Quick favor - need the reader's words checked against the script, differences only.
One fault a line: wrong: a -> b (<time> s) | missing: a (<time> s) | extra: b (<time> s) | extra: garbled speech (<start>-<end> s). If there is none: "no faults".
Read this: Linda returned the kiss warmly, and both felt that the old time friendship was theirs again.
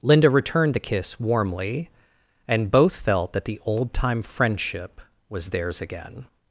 no faults